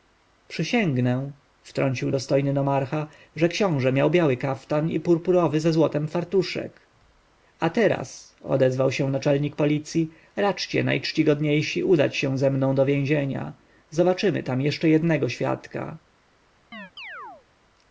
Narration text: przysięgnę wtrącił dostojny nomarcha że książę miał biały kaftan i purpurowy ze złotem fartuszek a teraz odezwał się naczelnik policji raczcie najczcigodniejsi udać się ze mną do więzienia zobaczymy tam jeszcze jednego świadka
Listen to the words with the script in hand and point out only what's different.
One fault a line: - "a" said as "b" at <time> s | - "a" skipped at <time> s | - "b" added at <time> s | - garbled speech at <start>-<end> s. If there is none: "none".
none